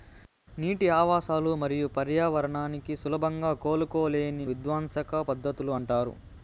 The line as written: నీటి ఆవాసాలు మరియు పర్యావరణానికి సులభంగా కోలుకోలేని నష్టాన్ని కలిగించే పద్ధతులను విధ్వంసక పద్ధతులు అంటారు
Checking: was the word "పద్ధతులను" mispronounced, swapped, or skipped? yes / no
yes